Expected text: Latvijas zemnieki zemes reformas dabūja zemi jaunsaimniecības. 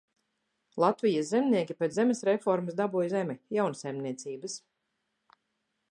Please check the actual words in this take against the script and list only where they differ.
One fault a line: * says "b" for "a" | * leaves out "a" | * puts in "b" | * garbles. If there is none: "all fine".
* puts in "pēc"